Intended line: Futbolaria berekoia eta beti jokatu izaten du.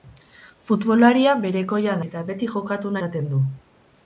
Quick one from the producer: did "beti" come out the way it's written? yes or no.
yes